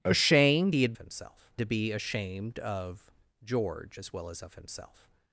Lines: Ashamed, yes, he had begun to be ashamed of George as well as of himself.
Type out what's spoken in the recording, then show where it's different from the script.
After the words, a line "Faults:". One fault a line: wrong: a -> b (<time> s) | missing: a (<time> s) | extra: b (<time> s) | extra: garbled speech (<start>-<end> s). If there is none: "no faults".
Ashamed, he had himself to be ashamed of George as well as of himself.
Faults:
missing: yes (0.8 s)
wrong: begun -> himself (1.0 s)